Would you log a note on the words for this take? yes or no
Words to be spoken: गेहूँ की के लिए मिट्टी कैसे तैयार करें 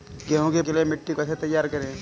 no